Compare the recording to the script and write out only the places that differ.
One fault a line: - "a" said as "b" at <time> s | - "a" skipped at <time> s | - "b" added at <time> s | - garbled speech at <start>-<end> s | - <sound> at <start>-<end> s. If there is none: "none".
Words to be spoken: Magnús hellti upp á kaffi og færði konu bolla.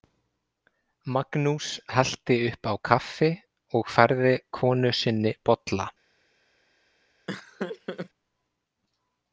- "sinni" added at 5.0 s
- laugh at 7.3-8.1 s